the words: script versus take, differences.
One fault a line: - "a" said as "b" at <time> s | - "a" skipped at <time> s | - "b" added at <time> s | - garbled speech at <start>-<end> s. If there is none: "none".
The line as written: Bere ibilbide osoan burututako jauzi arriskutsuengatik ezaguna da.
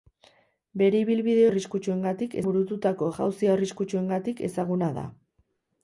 - "osoan" said as "arriskutsuengatik" at 1.5 s